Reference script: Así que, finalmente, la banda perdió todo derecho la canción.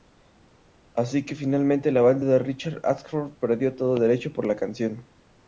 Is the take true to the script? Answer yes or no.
no